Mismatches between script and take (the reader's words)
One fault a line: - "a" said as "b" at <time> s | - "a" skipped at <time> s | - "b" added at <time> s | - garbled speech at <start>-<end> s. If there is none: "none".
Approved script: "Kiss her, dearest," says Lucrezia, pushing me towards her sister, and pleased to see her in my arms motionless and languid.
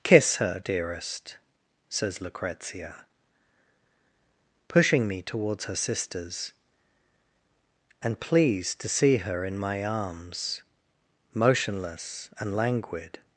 - "sister" said as "sisters" at 5.8 s